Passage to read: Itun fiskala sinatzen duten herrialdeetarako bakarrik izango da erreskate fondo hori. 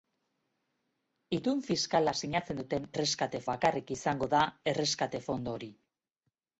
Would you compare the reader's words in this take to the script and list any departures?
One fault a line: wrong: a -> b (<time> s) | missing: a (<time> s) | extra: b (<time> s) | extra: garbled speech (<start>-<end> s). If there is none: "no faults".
wrong: herrialdeetarako -> erreskate (3.0 s)